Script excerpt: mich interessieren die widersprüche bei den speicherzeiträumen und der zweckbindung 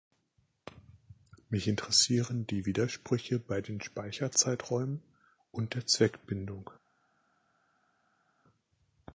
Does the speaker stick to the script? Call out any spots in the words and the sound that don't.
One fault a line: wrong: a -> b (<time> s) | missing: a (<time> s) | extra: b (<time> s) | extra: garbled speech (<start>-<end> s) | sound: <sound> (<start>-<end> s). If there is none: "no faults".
no faults